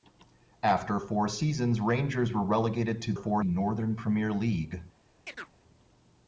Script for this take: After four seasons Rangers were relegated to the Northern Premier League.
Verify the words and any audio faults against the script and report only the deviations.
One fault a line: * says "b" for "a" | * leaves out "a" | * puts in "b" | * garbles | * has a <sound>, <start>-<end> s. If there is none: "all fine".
* says "four" for "the"
* has a chirp, 5.2-5.5 s